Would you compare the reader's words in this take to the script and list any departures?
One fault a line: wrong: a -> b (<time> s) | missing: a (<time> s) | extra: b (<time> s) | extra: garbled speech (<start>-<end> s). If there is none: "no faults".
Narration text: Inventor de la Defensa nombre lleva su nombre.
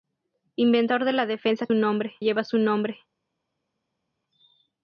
no faults